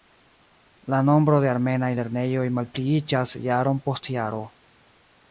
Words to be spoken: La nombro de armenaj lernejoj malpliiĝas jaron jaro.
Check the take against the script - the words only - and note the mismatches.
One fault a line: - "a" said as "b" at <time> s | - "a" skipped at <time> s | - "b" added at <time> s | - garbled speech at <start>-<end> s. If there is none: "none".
- "post" added at 3.9 s